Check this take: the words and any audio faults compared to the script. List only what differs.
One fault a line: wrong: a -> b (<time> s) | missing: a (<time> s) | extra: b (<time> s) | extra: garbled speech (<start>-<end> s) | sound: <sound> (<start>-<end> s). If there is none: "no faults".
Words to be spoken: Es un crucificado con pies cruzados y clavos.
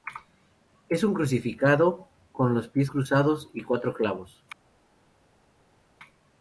extra: los (2.5 s)
extra: cuatro (3.6 s)